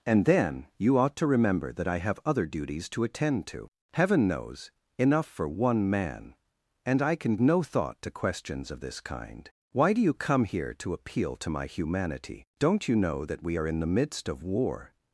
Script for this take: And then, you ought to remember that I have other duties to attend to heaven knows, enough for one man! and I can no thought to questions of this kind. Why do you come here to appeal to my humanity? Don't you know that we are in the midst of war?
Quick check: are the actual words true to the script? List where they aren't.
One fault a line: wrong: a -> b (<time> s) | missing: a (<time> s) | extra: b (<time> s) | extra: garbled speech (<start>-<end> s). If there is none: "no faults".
no faults